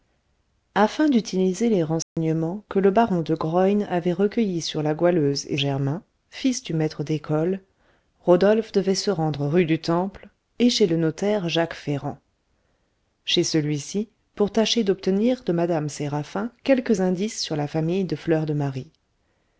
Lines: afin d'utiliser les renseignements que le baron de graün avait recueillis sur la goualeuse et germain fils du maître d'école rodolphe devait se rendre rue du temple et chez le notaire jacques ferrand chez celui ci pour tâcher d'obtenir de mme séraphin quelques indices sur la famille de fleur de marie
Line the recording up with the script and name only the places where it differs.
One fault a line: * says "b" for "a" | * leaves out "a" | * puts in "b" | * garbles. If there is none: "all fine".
all fine